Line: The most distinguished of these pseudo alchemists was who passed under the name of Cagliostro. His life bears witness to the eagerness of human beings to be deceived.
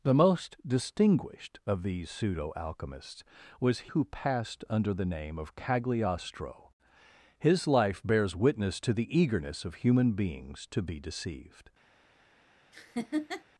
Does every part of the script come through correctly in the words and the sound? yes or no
no